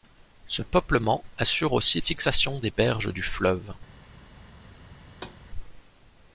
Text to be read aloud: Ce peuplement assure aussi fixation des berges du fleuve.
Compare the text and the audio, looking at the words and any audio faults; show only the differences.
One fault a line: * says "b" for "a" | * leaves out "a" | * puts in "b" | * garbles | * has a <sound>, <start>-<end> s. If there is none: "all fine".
* has a thud, 5.1-5.4 s